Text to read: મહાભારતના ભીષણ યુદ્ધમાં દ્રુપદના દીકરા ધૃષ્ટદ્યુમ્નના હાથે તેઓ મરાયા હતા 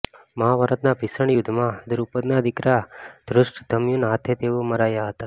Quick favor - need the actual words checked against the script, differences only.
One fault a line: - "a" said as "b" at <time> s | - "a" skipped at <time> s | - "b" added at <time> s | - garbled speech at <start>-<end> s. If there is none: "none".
none